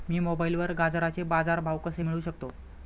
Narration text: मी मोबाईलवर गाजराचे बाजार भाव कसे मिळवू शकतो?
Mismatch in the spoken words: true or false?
false